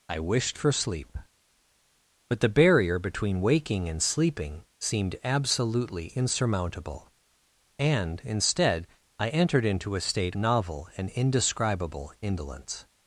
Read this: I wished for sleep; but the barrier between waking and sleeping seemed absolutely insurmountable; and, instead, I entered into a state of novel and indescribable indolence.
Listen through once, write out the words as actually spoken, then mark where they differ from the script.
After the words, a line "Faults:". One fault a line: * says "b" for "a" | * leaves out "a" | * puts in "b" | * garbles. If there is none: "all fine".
I wished for sleep; but the barrier between waking and sleeping seemed absolutely insurmountable; and, instead, I entered into a state novel and indescribable indolence.
Faults:
* leaves out "of"